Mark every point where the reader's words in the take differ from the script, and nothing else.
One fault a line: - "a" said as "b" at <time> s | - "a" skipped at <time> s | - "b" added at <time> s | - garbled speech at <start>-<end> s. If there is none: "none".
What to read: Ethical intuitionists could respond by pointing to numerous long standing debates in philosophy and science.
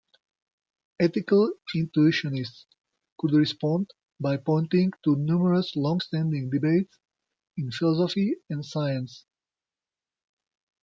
none